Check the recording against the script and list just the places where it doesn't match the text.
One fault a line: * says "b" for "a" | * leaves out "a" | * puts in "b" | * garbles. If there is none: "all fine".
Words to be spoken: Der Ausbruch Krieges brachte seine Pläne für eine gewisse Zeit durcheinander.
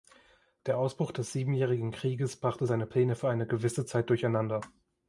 * puts in "des Siebenjährigen"